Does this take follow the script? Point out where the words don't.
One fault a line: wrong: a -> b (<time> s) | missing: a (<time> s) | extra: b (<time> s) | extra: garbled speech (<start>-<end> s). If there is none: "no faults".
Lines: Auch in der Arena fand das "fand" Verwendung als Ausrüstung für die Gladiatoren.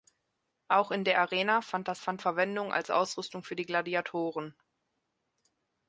no faults